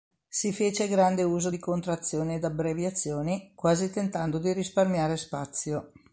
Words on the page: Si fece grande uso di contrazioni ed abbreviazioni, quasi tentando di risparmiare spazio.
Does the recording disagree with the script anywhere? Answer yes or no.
no